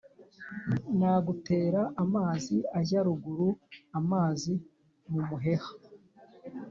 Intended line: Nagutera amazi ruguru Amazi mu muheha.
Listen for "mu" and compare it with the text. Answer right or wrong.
right